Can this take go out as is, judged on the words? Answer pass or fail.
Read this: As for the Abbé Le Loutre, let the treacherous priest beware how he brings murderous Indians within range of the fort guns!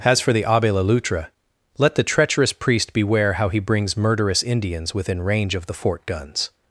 pass